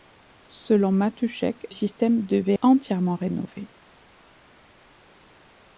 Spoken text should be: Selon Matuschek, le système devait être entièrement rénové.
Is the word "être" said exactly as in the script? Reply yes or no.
no